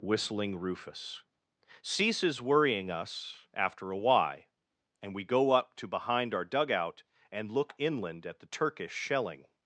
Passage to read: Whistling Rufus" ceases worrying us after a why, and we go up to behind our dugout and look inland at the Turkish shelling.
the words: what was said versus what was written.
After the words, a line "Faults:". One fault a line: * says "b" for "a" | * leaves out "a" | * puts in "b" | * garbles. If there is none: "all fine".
Whistling Rufus" ceases worrying us after a why, and we go up to behind our dugout and look inland at the Turkish shelling.
Faults:
all fine